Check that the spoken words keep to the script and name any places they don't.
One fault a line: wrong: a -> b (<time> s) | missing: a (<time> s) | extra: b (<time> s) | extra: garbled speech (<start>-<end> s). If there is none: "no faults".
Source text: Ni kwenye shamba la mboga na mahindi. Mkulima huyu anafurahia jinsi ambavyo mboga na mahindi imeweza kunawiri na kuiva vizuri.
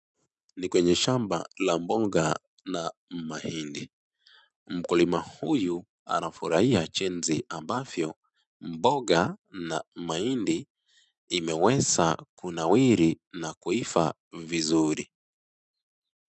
no faults